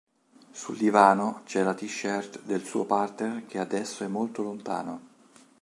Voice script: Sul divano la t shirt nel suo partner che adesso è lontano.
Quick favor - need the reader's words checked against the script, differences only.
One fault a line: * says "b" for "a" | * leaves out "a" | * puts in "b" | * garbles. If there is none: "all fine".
* puts in "c'è"
* says "del" for "nel"
* puts in "molto"